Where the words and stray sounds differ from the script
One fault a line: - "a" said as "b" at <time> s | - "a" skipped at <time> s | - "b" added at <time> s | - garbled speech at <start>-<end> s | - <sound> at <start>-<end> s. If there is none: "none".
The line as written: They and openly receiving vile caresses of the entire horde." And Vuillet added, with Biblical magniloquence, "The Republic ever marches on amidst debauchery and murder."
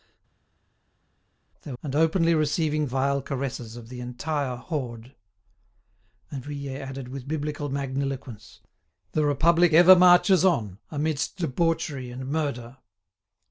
none